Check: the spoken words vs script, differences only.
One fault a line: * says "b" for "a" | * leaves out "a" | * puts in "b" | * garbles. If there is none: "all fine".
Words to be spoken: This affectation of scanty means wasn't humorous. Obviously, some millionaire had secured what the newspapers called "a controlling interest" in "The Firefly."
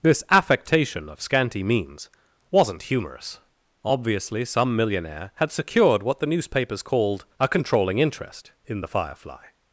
all fine